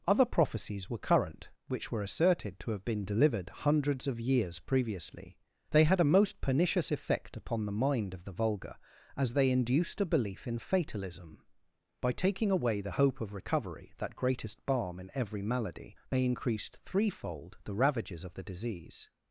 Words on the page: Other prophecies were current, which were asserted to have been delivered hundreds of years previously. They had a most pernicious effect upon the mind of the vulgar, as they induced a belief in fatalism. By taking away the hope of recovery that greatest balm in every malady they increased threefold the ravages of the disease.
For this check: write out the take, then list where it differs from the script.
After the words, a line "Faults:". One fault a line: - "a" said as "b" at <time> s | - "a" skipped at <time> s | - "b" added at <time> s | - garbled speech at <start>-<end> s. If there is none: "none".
Other prophecies were current, which were asserted to have been delivered hundreds of years previously. They had a most pernicious effect upon the mind of the vulgar, as they induced a belief in fatalism. By taking away the hope of recovery that greatest balm in every malady they increased threefold the ravages of the disease.
Faults:
none